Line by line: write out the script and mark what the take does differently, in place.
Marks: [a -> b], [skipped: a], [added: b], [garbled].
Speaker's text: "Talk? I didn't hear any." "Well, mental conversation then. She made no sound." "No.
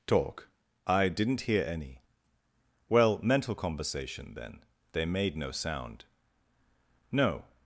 "Talk? I didn't hear any." "Well, mental conversation then. [She -> They] made no sound." "No.